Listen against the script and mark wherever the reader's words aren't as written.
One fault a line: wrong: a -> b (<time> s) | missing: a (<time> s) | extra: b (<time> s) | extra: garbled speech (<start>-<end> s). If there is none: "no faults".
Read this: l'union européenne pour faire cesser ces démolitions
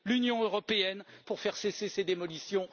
no faults